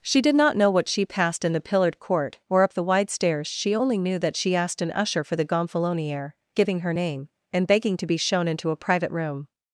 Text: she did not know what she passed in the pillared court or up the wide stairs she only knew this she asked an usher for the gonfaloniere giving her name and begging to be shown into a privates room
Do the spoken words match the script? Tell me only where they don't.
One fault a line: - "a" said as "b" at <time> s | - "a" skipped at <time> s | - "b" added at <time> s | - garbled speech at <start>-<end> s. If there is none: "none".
- "this" said as "that" at 4.2 s
- "privates" said as "private" at 8.8 s